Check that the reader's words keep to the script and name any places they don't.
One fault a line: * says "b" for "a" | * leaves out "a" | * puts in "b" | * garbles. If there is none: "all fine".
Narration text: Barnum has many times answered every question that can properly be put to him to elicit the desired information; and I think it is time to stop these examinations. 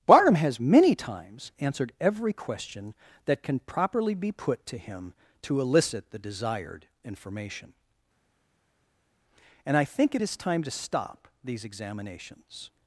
all fine